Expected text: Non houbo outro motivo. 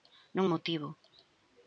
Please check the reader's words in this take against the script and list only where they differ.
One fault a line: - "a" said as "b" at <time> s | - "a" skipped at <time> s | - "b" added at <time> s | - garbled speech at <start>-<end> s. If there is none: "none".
- "houbo outro" skipped at 0.5 s